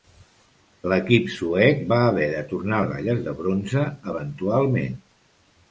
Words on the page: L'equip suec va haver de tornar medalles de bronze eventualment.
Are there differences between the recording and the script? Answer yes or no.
no